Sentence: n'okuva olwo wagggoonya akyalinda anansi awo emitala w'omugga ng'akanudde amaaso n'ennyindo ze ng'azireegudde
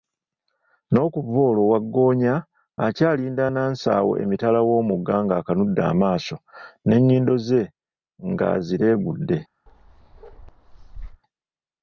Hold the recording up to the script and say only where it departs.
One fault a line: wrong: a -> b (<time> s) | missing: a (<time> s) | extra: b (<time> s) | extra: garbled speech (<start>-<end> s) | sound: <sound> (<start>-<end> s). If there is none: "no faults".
sound: bark (9.7-11.2 s)